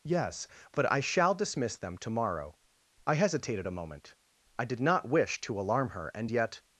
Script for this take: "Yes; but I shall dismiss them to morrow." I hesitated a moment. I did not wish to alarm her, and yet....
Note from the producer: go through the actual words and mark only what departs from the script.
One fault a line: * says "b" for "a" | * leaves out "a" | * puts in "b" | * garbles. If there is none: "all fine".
all fine